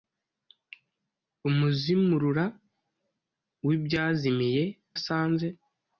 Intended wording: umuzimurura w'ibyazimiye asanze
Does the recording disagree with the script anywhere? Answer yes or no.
no